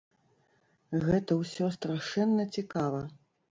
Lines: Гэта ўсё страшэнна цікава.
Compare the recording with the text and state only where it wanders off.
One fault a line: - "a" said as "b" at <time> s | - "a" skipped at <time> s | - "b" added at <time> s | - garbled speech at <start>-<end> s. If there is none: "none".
none